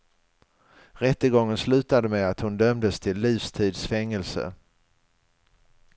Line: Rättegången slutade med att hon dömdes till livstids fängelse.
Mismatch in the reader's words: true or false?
false